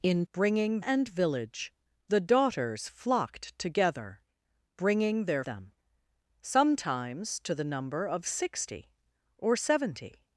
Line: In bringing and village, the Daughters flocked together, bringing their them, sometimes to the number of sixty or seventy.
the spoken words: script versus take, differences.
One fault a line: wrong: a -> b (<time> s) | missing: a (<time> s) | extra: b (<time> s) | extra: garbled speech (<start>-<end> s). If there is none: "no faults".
no faults